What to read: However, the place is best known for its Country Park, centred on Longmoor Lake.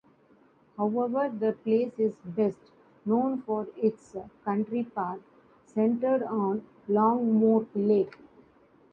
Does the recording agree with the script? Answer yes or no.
yes